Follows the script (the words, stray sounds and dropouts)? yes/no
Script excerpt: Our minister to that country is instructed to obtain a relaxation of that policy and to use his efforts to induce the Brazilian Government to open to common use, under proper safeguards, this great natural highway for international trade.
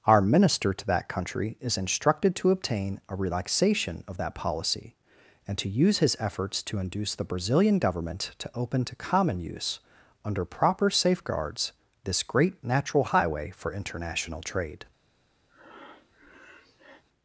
no